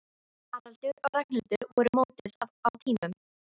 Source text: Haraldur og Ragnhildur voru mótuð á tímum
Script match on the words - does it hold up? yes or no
yes